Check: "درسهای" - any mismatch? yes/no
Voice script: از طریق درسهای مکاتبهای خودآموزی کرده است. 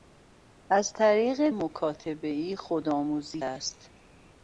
yes